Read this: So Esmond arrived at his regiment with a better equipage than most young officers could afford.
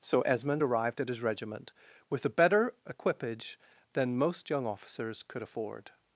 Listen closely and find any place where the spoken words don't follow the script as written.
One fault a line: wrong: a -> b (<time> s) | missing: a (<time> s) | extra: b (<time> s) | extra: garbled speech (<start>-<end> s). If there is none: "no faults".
no faults